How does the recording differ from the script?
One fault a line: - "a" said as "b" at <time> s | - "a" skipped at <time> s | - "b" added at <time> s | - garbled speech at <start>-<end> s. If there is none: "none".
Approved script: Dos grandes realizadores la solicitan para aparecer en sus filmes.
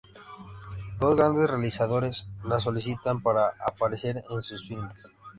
none